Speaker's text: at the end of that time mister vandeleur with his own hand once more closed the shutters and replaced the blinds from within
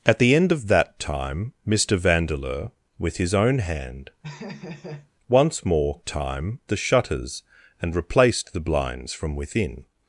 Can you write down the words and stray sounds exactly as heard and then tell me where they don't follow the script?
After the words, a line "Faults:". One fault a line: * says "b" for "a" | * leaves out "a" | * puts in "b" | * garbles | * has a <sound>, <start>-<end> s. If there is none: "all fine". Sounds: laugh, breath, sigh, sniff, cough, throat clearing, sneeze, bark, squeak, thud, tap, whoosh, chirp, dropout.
at the end of that time mister vandeleur with his own hand once more time the shutters and replaced the blinds from within
Faults:
* has a laugh, 4.2-5.1 s
* says "time" for "closed"